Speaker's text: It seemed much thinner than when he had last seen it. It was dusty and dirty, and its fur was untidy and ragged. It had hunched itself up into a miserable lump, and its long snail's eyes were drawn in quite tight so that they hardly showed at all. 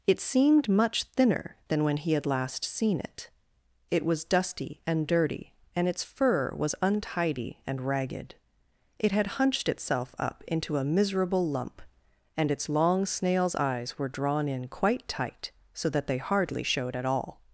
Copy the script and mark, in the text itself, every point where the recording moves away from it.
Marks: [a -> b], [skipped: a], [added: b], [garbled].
It seemed much thinner than when he had last seen it. It was dusty and dirty, and its fur was untidy and ragged. It had hunched itself up into a miserable lump, and its long snail's eyes were drawn in quite tight so that they hardly showed at all.